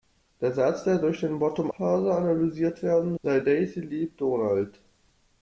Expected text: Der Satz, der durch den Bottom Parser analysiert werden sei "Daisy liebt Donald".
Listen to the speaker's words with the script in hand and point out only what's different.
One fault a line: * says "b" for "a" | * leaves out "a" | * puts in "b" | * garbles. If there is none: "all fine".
all fine